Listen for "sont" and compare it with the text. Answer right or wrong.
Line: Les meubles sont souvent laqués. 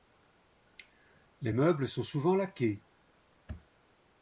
right